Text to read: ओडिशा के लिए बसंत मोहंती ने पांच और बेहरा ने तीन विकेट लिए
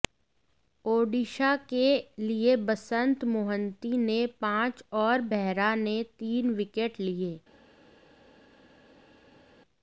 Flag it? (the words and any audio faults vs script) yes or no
no